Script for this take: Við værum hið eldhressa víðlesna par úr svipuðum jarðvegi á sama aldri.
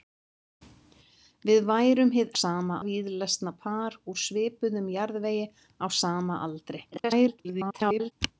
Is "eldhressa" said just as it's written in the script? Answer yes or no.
no